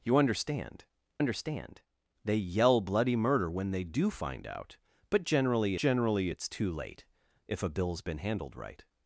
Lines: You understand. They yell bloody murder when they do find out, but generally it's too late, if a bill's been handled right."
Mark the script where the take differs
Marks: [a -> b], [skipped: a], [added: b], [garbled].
You understand. [added: understand] They yell bloody murder when they do find out, but generally [added: generally] it's too late, if a bill's been handled right."